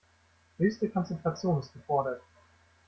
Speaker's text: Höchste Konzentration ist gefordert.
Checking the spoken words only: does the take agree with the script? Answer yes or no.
yes